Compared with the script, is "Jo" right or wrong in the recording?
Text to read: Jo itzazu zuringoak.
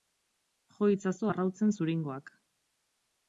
right